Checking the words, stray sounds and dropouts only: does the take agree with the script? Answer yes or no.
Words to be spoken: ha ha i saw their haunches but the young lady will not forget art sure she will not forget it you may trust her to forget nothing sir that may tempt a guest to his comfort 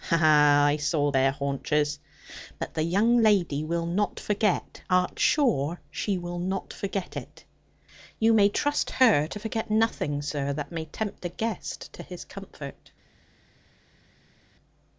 yes